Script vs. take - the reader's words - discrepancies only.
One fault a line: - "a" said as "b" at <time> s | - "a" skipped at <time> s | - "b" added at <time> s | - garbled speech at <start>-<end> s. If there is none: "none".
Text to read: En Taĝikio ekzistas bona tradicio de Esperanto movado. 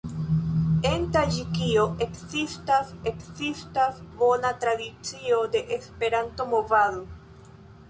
- "ekzistas" added at 3.1 s